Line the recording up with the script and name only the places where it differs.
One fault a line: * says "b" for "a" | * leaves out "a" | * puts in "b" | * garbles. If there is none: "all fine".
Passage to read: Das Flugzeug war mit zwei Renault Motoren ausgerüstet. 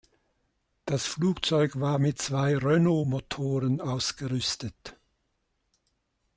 all fine